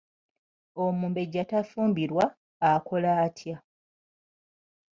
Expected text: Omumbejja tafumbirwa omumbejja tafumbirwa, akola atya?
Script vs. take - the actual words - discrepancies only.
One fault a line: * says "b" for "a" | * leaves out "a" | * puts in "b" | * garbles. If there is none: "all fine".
* leaves out "omumbejja tafumbirwa"